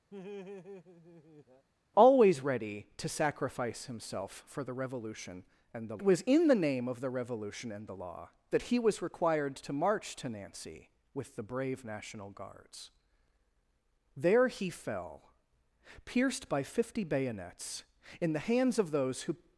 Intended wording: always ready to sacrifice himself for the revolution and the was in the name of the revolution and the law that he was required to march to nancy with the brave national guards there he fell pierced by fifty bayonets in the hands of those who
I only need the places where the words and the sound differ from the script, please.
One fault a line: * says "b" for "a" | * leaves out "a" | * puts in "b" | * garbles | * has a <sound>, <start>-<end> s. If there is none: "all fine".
* has a laugh, 0.1-1.7 s